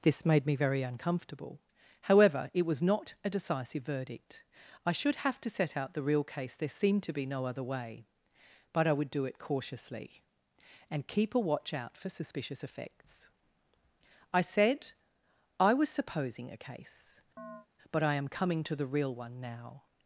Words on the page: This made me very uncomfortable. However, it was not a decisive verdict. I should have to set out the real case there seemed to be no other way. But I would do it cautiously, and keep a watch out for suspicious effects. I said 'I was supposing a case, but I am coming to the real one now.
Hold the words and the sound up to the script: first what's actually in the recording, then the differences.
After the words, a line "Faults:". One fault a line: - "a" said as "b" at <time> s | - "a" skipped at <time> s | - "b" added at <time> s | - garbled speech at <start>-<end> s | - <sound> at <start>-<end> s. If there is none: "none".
This made me very uncomfortable. However, it was not a decisive verdict. I should have to set out the real case there seemed to be no other way. But I would do it cautiously, and keep a watch out for suspicious effects. I said 'I was supposing a case, but I am coming to the real one now.
Faults:
- chirp at 17.4-17.7 s